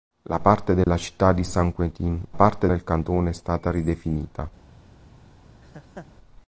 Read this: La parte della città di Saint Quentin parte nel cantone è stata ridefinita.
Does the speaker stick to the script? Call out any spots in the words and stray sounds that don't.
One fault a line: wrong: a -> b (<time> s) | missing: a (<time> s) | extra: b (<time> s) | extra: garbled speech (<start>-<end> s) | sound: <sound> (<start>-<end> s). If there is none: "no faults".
sound: dropout (0.8-0.9 s)
sound: laugh (5.6-6.1 s)